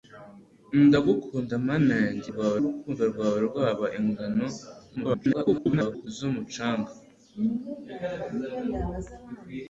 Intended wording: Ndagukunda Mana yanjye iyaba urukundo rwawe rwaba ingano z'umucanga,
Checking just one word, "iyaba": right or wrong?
wrong